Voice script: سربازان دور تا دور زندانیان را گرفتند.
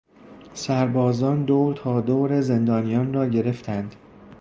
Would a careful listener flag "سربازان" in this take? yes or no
no